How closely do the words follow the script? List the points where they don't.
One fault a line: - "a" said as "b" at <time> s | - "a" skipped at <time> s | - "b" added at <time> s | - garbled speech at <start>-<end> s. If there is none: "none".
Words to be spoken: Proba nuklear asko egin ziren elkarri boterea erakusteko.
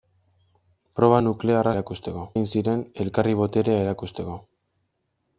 - "asko" said as "erakusteko" at 1.7 s